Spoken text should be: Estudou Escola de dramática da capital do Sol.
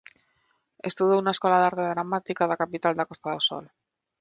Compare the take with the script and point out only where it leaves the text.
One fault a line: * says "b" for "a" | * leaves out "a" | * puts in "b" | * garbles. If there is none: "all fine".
* puts in "na"
* puts in "arte"
* puts in "da Costa"